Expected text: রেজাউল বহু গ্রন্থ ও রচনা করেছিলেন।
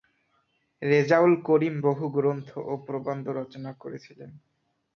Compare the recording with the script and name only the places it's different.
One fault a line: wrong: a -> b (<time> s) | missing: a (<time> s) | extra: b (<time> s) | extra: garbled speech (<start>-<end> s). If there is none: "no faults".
extra: করিম (1.5 s)
extra: প্রবন্ধ (2.9 s)